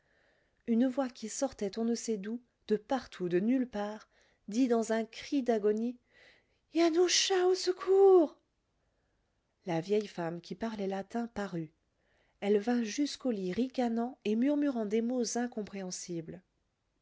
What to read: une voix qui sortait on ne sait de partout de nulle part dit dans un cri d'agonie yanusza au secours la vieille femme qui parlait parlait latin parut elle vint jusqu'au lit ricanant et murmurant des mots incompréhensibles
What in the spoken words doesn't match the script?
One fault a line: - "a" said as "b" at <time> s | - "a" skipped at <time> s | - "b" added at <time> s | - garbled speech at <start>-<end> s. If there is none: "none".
- "d'où" added at 2.2 s
- "parlait" skipped at 10.9 s